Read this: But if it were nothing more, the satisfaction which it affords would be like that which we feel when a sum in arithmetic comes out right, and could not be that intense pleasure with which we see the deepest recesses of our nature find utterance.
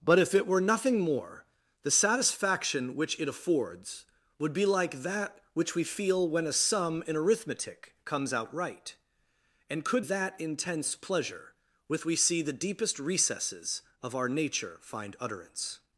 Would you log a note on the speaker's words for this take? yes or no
yes